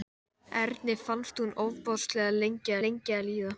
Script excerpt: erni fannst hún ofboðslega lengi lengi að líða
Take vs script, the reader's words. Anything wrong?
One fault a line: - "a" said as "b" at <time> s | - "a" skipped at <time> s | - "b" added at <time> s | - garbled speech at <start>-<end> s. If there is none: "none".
none